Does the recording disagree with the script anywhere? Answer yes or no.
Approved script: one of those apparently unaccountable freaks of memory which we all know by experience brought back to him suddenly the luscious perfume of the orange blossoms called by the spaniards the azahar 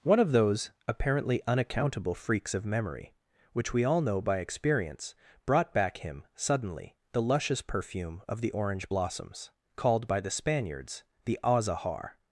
yes